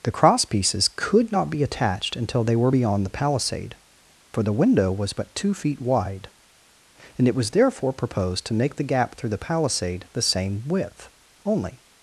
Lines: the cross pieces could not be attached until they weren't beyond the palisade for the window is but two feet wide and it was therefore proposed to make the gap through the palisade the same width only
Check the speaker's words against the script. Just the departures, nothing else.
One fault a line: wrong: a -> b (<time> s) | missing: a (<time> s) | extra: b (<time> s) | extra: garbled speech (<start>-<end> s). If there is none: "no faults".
wrong: weren't -> were (2.5 s)
wrong: is -> was (4.9 s)